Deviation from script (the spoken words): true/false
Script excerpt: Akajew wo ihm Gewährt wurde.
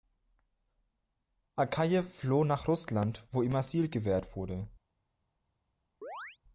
true